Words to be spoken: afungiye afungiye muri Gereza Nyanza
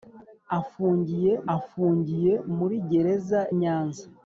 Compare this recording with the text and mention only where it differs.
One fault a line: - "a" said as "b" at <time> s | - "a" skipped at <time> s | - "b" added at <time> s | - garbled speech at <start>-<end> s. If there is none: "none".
none